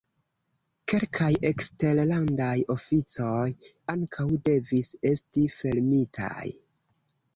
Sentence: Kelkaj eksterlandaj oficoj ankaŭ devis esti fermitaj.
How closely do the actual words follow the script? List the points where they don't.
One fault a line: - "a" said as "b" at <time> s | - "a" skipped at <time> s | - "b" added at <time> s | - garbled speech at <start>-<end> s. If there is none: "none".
none